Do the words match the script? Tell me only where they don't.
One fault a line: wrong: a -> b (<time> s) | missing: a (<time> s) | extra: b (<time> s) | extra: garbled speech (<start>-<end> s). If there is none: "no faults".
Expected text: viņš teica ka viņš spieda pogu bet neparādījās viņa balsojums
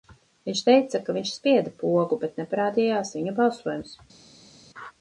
no faults